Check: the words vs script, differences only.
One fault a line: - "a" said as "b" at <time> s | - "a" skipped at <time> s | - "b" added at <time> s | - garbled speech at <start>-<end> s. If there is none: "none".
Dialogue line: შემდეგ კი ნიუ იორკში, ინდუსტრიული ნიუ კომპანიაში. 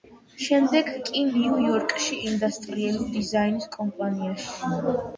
- "ნიუ" said as "დიზაინის" at 3.2 s